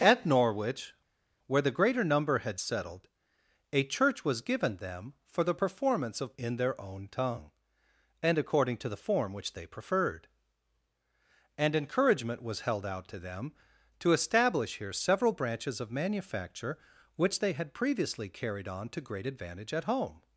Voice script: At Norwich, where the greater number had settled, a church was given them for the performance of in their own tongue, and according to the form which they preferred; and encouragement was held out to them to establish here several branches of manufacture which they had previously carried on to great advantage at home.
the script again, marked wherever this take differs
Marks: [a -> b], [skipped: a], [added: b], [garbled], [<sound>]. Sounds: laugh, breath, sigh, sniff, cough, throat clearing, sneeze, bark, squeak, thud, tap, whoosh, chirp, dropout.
At Norwich, where the greater number had settled, a church was given them for the performance of in their own tongue, and according to the form which they preferred; and encouragement was held out to them to establish here several branches of manufacture which they had previously carried on to great advantage at home.